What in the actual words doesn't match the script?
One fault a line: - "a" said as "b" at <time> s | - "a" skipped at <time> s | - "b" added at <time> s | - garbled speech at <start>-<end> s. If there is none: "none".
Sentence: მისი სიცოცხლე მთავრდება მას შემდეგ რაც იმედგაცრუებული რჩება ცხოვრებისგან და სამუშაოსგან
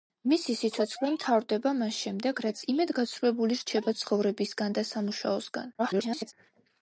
- garbled speech at 5.8-6.3 s